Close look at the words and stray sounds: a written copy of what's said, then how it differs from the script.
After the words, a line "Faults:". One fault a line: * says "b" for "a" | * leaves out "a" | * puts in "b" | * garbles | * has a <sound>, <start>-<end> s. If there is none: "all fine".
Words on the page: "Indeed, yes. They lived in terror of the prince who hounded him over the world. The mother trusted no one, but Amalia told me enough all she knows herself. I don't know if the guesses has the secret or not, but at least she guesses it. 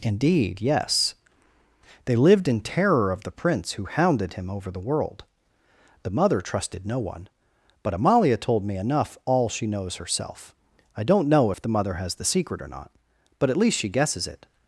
"Indeed, yes. They lived in terror of the prince who hounded him over the world. The mother trusted no one, but Amalia told me enough all she knows herself. I don't know if the mother has the secret or not, but at least she guesses it.
Faults:
* says "mother" for "guesses"